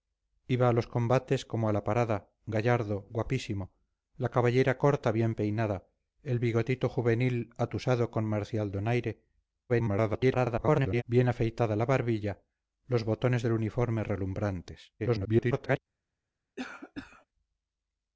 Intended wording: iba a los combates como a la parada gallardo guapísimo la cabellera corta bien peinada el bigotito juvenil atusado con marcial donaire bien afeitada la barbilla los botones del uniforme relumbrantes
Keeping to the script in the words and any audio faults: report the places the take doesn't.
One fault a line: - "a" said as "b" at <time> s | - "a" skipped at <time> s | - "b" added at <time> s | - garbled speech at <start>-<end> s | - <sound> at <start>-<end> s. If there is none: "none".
- garbled speech at 9.7-11.0 s
- garbled speech at 15.0-15.8 s
- cough at 16.6-17.3 s